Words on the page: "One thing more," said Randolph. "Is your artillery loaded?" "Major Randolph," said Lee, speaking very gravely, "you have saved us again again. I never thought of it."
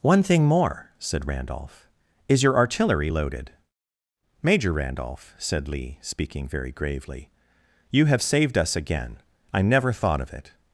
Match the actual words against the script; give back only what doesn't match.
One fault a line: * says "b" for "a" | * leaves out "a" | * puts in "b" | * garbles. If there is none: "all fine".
* leaves out "again"